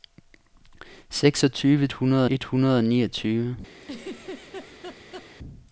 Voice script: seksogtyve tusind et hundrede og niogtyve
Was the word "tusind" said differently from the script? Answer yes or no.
yes